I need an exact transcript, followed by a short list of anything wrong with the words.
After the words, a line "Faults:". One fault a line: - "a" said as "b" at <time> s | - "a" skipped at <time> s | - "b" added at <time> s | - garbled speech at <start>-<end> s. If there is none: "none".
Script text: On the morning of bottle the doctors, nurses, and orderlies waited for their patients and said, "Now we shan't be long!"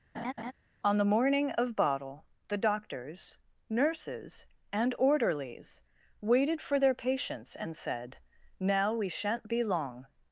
On the morning of bottle the doctors, nurses, and orderlies waited for their patients and said, "Now we shan't be long!"
Faults:
none